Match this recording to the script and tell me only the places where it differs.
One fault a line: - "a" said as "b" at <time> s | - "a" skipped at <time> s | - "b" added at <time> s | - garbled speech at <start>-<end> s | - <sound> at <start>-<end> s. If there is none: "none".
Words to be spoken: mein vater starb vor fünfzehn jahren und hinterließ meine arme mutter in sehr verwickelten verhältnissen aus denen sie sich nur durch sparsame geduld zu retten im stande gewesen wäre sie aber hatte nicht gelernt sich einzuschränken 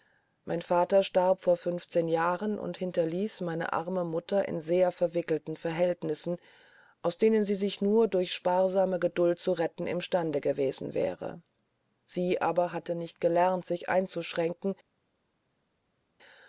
none